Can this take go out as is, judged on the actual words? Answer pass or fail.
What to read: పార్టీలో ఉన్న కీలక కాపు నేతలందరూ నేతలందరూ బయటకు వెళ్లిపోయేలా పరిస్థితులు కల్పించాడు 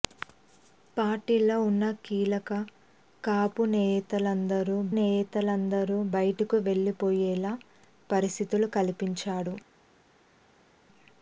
pass